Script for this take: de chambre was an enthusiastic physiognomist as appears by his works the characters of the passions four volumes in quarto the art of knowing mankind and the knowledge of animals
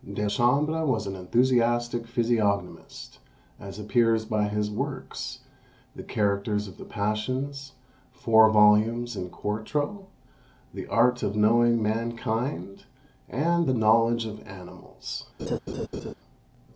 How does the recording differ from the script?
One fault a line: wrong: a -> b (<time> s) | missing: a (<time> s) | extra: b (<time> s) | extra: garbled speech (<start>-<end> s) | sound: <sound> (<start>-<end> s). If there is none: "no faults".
sound: laugh (15.4-16.1 s)